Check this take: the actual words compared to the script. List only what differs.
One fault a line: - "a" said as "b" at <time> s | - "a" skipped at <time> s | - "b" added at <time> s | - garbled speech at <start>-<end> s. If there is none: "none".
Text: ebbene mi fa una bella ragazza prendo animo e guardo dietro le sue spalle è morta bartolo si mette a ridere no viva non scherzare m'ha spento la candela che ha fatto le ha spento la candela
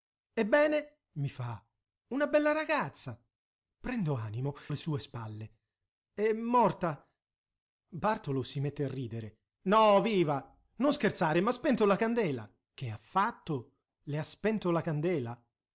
- "e guardo dietro" skipped at 4.5 s